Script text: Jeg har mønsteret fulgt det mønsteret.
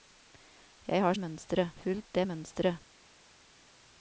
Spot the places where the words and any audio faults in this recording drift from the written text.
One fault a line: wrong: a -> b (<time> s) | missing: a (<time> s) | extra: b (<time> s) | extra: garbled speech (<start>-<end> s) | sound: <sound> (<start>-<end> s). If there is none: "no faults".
no faults